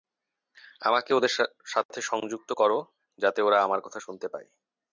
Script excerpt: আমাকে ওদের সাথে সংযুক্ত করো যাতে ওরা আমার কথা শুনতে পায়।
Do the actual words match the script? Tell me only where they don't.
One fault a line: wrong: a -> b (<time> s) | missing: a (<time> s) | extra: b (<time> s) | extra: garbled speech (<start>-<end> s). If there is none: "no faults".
no faults